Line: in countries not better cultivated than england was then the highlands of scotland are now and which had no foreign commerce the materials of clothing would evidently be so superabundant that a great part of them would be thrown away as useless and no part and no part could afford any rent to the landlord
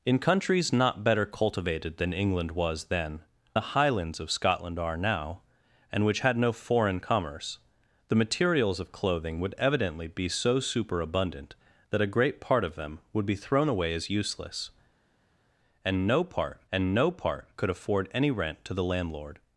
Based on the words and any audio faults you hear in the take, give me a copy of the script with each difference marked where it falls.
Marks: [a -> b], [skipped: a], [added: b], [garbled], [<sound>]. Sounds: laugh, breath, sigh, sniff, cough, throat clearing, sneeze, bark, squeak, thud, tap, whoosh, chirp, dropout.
in countries not better cultivated than england was then the highlands of scotland are now and which had no foreign commerce the materials of clothing would evidently be so superabundant that a great part of them would be thrown away as useless and no part and no part could afford any rent to the landlord